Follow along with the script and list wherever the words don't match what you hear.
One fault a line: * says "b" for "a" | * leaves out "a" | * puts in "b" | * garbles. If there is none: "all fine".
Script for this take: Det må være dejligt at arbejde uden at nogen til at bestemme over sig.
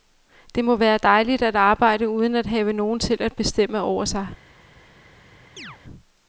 * puts in "have"